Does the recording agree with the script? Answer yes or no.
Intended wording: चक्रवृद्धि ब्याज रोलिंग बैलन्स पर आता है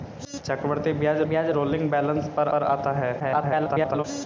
no